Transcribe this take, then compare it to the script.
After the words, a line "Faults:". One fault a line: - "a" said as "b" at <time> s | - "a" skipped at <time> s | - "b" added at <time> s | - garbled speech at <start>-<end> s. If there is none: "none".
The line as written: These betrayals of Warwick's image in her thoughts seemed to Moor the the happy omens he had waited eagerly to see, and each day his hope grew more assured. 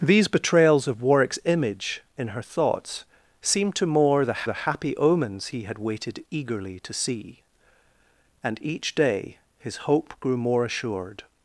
These betrayals of Warwick's image in her thoughts seemed to Moor the the happy omens he had waited eagerly to see, and each day his hope grew more assured.
Faults:
none